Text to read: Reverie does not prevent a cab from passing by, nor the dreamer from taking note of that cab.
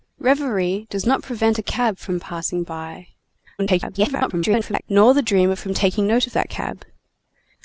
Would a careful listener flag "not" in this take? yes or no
no